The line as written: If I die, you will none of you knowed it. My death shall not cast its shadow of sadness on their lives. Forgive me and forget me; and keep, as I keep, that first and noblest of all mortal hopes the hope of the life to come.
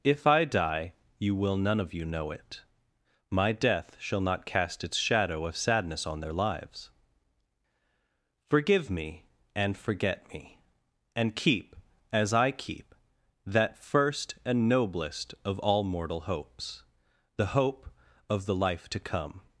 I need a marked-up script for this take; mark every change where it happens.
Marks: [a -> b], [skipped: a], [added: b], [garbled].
If I die, you will none of you [knowed -> know] it. My death shall not cast its shadow of sadness on their lives. Forgive me and forget me; and keep, as I keep, that first and noblest of all mortal hopes the hope of the life to come.